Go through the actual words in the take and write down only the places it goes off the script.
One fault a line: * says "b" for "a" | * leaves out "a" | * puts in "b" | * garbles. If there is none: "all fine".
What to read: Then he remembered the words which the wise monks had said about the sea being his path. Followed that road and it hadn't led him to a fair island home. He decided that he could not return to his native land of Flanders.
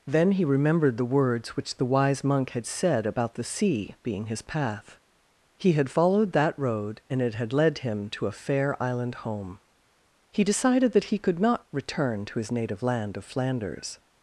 * says "monk" for "monks"
* puts in "He had"
* says "had" for "hadn't"